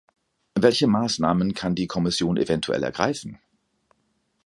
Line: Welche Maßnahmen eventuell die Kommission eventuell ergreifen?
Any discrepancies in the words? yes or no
yes